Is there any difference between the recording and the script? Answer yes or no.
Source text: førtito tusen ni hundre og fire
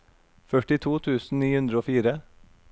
no